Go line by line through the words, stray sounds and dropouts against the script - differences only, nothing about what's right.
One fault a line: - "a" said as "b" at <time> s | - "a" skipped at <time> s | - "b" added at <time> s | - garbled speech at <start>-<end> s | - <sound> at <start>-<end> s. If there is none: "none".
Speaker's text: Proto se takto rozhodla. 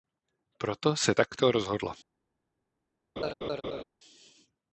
- laugh at 3.2-3.8 s